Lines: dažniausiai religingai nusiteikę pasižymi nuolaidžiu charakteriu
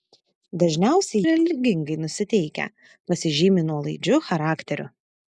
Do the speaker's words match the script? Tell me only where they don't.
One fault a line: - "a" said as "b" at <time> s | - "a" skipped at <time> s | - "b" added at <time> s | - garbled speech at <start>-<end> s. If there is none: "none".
none